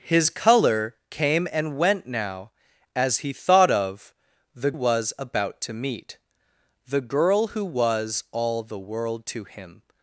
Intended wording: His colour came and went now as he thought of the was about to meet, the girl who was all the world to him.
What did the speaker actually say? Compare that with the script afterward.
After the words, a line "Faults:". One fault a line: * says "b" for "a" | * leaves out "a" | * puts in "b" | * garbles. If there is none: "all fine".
His colour came and went now as he thought of the was about to meet, the girl who was all the world to him.
Faults:
all fine